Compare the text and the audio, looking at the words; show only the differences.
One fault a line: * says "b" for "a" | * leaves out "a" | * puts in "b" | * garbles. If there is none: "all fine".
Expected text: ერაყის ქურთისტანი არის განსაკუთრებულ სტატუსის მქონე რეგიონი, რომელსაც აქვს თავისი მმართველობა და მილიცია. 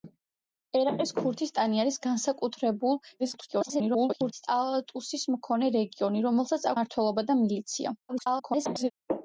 * garbles
* leaves out "აქვს თავისი"
* garbles